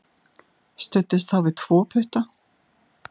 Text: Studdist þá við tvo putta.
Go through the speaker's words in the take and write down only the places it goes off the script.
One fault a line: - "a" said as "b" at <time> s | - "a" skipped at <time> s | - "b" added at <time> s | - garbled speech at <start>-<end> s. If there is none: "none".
none